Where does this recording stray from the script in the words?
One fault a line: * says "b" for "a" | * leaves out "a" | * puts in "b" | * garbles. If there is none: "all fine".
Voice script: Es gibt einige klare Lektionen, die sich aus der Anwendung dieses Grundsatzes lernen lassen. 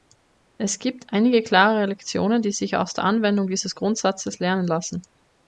all fine